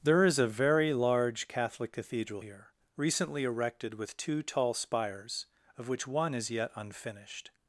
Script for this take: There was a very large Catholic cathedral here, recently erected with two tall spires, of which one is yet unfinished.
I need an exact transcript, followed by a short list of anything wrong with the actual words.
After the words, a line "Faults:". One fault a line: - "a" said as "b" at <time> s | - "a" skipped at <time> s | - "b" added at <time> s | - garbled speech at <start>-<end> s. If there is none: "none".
There is a very large Catholic cathedral here, recently erected with two tall spires, of which one is yet unfinished.
Faults:
- "was" said as "is" at 0.2 s